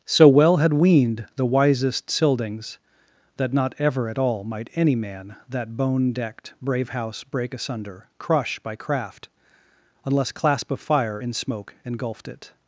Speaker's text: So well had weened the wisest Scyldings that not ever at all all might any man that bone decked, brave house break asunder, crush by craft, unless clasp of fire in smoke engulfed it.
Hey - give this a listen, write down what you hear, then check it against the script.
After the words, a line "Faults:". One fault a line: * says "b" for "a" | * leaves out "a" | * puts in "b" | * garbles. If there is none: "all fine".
So well had weened the wisest Scyldings that not ever at all might any man that bone decked, brave house break asunder, crush by craft, unless clasp of fire in smoke engulfed it.
Faults:
* leaves out "all"